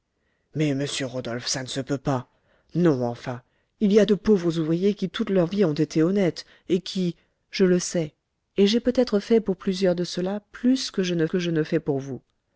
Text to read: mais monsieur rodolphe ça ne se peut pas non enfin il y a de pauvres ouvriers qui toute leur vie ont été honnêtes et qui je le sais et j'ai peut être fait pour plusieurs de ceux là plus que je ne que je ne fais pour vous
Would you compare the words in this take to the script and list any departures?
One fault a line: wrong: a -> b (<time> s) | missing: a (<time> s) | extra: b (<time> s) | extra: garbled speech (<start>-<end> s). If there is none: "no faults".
no faults